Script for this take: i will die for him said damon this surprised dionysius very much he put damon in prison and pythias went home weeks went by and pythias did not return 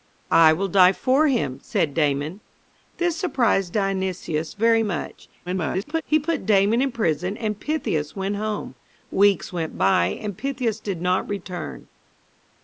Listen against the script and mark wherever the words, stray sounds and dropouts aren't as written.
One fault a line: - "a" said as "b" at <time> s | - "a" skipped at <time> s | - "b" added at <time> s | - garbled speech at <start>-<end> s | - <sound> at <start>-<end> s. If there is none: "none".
- garbled speech at 5.5-6.0 s